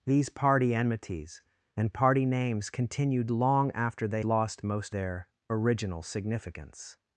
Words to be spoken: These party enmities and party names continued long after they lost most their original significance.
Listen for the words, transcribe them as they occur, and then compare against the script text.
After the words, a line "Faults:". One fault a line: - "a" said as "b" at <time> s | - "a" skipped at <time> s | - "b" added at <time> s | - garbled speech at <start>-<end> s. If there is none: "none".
These party enmities and party names continued long after they lost most their original significance.
Faults:
none